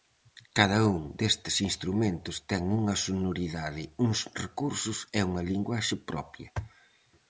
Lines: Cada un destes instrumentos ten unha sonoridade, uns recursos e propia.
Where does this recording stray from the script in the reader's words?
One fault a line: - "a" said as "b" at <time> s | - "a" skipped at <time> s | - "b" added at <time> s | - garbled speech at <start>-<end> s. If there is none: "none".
- "unha linguaxe" added at 5.3 s